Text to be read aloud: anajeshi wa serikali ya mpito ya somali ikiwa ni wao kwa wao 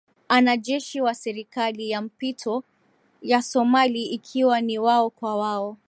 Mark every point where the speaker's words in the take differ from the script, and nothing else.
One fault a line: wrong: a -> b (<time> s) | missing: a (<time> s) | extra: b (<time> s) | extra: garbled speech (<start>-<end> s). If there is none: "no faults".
no faults